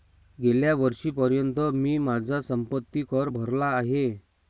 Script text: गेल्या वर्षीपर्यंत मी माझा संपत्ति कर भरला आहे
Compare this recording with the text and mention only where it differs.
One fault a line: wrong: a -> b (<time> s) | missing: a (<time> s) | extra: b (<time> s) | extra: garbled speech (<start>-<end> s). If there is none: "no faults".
no faults